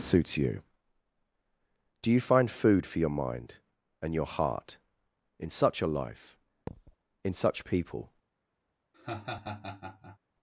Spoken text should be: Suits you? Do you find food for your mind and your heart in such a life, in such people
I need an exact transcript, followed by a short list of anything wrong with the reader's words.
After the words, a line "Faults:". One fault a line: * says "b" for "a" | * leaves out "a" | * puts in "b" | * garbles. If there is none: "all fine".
Suits you? Do you find food for your mind and your heart in such a life, in such people
Faults:
all fine